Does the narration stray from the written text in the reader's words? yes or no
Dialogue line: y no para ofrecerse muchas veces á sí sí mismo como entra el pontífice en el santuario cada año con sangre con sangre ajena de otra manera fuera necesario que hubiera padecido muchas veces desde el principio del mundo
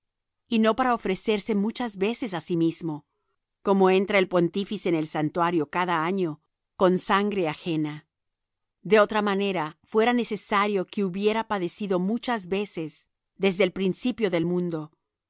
yes